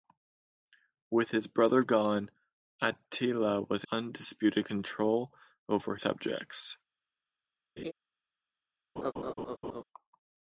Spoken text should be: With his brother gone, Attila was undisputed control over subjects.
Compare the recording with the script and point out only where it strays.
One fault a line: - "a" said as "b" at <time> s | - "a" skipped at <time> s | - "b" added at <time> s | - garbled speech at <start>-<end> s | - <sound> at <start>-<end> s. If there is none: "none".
- laugh at 7.8-7.9 s
- laugh at 9.0-9.8 s